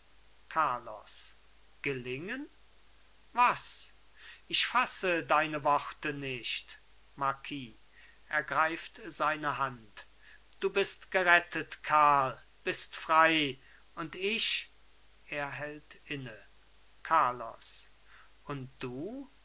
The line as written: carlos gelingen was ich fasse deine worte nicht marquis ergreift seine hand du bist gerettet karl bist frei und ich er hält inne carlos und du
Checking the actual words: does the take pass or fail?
pass